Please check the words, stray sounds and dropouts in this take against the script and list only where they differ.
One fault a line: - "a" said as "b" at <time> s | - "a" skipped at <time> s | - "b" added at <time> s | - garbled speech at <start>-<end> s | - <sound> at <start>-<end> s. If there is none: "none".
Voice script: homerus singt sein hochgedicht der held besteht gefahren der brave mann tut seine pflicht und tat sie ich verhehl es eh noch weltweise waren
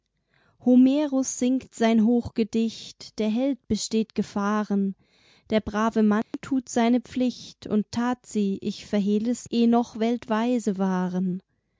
- dropout at 6.2-6.3 s